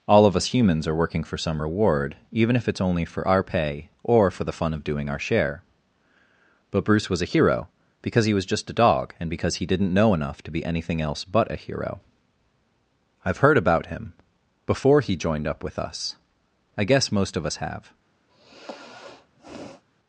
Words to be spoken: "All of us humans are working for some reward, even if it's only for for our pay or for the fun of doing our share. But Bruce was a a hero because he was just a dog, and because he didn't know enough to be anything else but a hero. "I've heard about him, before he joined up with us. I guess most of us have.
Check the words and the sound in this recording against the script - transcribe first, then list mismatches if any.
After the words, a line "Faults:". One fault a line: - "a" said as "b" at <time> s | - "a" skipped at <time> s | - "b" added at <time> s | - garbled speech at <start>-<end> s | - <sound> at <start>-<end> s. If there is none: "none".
"All of us humans are working for some reward, even if it's only for our pay or for the fun of doing our share. But Bruce was a hero because he was just a dog, and because he didn't know enough to be anything else but a hero. "I've heard about him, before he joined up with us. I guess most of us have.
Faults:
- "for" skipped at 3.3 s
- "a" skipped at 7.3 s
- sigh at 18.3-19.8 s